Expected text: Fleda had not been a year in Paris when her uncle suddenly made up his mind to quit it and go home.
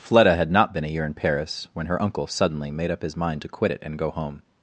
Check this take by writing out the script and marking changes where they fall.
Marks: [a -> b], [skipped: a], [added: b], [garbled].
Fleda had not been a year in Paris when her uncle suddenly made up his mind to quit it and go home.